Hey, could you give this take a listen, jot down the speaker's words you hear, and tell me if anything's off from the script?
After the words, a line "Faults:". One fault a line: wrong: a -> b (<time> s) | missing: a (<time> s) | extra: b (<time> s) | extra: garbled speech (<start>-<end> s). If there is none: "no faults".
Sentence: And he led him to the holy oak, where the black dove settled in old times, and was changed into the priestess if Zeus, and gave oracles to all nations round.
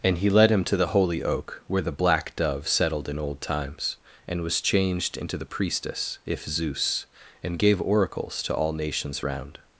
And he led him to the holy oak, where the black dove settled in old times, and was changed into the priestess if Zeus, and gave oracles to all nations round.
Faults:
no faults